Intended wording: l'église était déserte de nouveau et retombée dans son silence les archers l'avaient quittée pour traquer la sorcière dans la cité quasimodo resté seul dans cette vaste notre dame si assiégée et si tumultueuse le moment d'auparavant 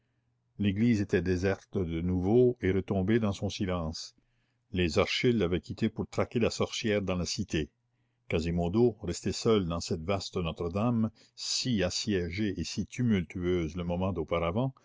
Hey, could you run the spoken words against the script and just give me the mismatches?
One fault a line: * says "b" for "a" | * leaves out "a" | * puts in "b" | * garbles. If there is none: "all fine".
all fine